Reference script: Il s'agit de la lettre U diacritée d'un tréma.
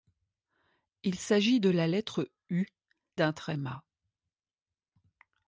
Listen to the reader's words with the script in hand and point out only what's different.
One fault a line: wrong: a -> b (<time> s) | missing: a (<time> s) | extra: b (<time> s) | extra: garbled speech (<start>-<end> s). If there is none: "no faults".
missing: diacritée (2.6 s)